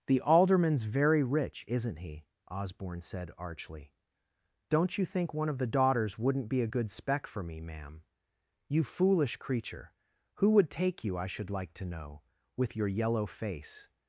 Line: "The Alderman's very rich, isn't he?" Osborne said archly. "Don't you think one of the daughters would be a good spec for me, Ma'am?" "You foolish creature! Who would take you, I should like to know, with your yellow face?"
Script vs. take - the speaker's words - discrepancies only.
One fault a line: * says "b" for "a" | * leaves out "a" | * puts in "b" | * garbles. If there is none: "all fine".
* says "wouldn't" for "would"